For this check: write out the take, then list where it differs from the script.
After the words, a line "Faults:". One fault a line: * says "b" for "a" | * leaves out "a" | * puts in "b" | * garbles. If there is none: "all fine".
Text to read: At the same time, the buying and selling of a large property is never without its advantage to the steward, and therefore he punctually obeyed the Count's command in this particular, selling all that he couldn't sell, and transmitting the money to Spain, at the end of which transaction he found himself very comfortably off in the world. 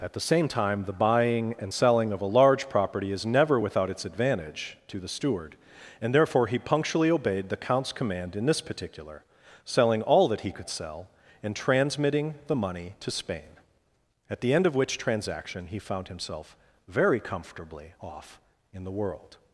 At the same time, the buying and selling of a large property is never without its advantage to the steward, and therefore he punctually obeyed the Count's command in this particular, selling all that he could sell, and transmitting the money to Spain, at the end of which transaction he found himself very comfortably off in the world.
Faults:
* says "could" for "couldn't"